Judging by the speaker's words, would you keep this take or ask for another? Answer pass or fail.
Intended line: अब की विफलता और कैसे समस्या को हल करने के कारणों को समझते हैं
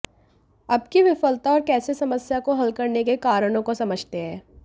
pass